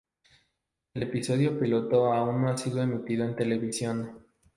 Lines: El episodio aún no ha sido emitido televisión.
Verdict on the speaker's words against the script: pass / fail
fail